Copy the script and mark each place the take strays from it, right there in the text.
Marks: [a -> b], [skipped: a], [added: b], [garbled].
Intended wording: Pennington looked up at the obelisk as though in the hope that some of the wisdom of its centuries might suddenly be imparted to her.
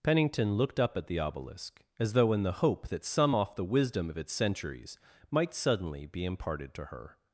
Pennington looked up at the obelisk as though in the hope that some [of -> off] the wisdom of its centuries might suddenly be imparted to her.